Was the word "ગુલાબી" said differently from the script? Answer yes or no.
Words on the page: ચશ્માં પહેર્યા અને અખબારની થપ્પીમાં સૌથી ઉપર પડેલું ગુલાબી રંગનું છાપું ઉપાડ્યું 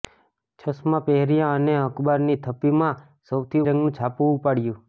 yes